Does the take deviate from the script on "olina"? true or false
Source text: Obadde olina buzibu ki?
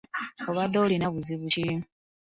false